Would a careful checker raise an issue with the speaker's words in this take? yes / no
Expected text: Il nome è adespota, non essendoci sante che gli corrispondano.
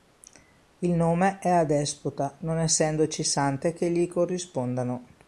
no